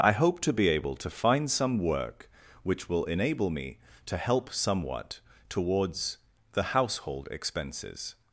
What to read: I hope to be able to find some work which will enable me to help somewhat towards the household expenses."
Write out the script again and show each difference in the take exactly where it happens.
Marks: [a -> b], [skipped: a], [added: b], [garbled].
I hope to be able to find some work which will enable me to help somewhat towards the household expenses."